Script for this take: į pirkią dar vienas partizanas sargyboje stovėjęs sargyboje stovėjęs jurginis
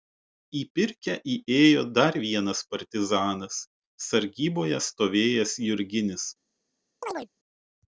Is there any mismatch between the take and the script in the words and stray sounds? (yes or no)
yes